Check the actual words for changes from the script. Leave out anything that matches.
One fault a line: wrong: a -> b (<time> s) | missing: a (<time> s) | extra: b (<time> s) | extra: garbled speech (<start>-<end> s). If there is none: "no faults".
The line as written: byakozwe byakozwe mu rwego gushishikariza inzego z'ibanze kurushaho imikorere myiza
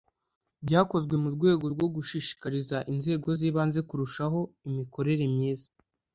missing: byakozwe (1.1 s)
extra: rwo (1.7 s)